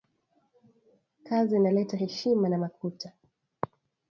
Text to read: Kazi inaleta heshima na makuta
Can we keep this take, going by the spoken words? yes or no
yes